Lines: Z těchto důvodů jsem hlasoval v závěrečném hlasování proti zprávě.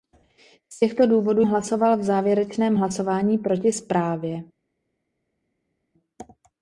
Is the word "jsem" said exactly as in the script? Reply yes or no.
no